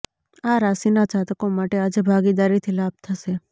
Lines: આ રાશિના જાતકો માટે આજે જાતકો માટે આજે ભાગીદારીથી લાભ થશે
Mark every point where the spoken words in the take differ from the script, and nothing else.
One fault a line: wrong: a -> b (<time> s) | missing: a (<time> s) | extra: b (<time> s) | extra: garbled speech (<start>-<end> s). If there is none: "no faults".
missing: જાતકો માટે આજે (2.0 s)